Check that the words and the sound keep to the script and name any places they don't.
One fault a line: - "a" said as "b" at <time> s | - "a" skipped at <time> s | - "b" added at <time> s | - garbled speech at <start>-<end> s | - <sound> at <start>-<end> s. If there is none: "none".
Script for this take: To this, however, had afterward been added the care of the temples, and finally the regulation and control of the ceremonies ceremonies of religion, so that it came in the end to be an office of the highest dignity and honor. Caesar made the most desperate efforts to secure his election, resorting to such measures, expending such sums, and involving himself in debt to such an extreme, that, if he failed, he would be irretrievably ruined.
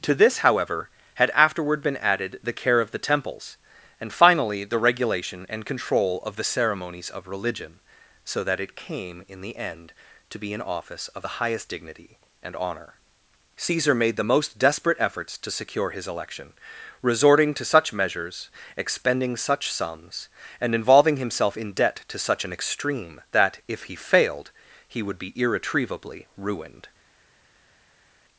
- "ceremonies" skipped at 7.1 s